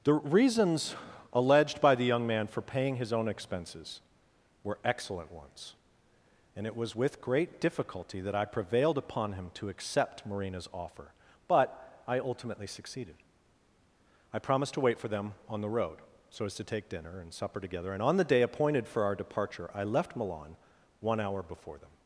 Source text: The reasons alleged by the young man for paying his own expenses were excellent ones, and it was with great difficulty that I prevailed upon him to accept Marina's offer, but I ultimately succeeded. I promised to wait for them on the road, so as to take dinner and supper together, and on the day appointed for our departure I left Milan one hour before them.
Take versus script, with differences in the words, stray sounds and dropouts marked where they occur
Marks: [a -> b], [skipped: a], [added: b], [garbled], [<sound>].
The reasons alleged by the young man for paying his own expenses were excellent ones, and it was with great difficulty that I prevailed upon him to accept Marina's offer, but I ultimately succeeded. I promised to wait for them on the road, so as to take dinner and supper together, and on the day appointed for our departure I left Milan one hour before them.